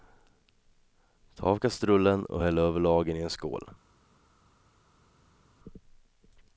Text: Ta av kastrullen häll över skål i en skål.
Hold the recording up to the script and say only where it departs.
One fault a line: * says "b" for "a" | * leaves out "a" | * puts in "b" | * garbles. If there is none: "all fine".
* puts in "och"
* says "lagen" for "skål"